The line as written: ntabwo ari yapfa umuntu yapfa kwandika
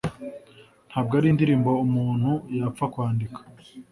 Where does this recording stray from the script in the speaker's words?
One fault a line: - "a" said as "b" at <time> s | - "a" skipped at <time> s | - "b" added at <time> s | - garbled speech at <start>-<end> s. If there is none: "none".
- "yapfa" said as "indirimbo" at 1.3 s